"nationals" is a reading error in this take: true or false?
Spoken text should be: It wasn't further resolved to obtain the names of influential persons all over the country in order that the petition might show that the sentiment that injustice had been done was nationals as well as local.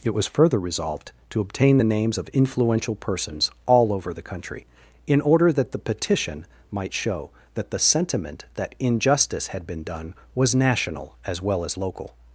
true